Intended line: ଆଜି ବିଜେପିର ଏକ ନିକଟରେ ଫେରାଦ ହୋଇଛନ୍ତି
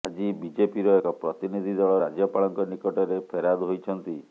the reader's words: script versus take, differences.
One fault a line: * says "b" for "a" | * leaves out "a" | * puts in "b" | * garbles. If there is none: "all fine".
* puts in "ପ୍ରତିନିଧି ଦଳ ରାଜ୍ୟପାଳଙ୍କ"